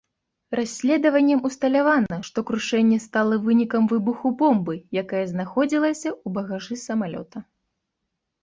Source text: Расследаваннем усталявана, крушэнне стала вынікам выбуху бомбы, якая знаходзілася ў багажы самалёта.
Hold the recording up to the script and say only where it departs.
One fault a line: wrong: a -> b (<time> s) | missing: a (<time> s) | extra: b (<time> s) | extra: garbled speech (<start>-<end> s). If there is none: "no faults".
extra: што (2.3 s)